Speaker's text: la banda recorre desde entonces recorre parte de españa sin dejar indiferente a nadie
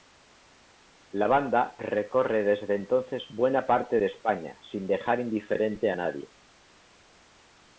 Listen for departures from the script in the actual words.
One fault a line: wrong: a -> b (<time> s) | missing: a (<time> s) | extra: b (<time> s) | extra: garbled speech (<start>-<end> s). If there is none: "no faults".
wrong: recorre -> buena (3.3 s)